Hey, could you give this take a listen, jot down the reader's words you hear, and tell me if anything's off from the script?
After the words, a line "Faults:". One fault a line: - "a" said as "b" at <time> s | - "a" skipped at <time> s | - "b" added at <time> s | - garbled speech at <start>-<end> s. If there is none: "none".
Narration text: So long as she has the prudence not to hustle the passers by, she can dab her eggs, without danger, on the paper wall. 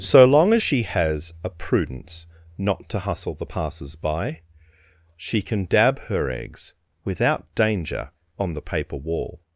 So long as she has a prudence not to hustle the passers by, she can dab her eggs, without danger, on the paper wall.
Faults:
- "the" said as "a" at 1.4 s